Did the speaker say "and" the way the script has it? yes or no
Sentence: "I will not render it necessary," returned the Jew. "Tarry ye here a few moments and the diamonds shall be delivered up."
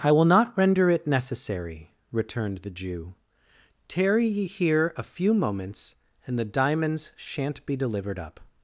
yes